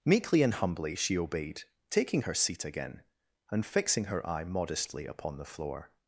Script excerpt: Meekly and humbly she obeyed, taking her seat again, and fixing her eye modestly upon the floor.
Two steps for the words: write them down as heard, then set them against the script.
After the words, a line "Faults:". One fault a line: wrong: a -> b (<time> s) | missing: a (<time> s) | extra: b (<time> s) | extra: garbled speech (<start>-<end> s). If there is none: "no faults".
Meekly and humbly she obeyed, taking her seat again, and fixing her eye modestly upon the floor.
Faults:
no faults